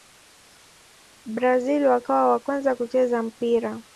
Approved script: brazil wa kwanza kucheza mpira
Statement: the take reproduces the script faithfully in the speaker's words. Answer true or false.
false